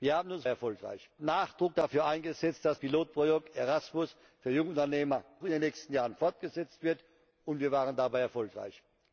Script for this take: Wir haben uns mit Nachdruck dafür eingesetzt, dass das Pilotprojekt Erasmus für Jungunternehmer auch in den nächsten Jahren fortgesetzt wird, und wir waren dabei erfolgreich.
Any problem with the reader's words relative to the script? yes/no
yes